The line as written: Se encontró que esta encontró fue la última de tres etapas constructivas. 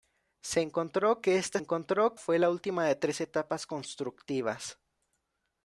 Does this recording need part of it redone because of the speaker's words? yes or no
no